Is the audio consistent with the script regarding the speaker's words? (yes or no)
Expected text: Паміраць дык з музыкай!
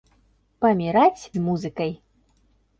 no